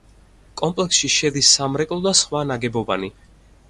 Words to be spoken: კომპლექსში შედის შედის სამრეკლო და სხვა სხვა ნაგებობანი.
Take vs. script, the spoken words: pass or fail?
fail